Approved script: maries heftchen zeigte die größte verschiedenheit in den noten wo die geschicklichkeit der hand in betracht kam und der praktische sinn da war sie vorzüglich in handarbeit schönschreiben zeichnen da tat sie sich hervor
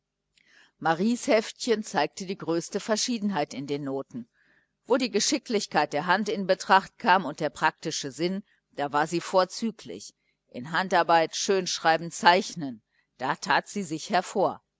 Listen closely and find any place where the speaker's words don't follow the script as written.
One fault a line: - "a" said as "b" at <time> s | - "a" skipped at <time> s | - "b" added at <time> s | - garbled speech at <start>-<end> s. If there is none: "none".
none